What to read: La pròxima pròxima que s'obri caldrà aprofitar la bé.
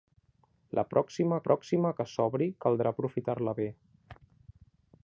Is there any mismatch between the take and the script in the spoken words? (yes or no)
no